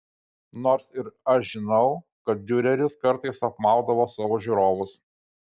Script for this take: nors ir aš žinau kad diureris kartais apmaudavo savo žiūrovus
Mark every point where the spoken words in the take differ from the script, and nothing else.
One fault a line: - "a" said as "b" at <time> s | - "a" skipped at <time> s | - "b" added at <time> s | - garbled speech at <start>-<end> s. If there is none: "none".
none